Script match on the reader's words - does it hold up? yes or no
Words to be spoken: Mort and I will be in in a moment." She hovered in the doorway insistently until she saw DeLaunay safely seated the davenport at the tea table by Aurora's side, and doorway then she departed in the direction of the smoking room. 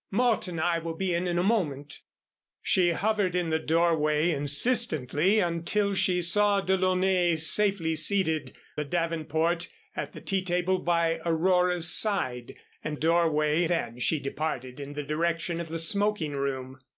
yes